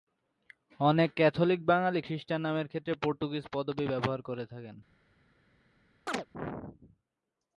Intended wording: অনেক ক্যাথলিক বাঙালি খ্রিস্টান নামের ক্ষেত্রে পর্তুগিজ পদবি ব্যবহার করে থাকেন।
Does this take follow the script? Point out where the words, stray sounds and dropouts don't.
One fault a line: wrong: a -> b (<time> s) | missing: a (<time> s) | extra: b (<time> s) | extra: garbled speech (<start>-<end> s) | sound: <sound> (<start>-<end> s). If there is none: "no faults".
sound: chirp (6.1-6.3 s)